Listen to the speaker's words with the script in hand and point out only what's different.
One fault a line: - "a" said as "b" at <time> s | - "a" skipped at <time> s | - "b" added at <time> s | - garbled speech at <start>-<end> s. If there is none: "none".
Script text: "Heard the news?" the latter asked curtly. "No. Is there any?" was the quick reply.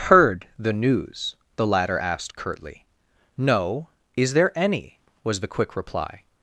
none